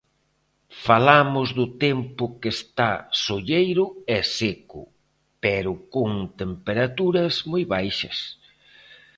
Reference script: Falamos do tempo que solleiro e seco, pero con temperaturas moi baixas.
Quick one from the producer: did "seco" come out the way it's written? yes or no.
yes